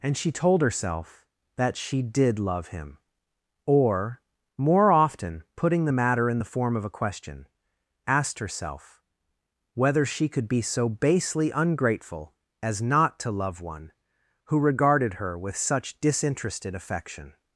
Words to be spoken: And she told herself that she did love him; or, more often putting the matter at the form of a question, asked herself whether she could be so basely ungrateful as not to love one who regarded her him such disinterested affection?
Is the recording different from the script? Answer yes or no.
yes